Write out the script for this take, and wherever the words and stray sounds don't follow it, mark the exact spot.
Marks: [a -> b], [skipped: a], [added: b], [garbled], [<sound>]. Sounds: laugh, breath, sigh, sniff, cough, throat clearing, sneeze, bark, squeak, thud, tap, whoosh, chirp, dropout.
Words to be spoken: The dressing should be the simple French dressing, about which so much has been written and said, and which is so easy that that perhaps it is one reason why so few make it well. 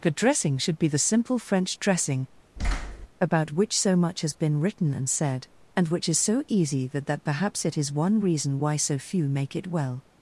The dressing should be the simple French dressing, [thud] about which so much has been written and said, and which is so easy that that perhaps it is one reason why so few make it well.